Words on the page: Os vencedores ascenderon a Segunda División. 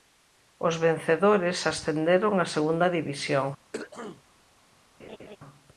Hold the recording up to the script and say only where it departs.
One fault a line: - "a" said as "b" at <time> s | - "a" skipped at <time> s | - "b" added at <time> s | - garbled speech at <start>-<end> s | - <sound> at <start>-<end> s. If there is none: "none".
- throat clearing at 3.7-4.2 s
- laugh at 5.0-5.4 s